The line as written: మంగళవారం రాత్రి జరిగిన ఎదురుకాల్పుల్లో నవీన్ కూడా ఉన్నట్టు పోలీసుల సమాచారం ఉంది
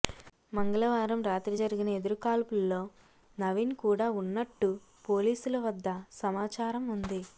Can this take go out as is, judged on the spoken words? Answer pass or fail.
fail